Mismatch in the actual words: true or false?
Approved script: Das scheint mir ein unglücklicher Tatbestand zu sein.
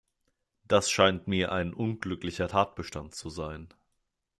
false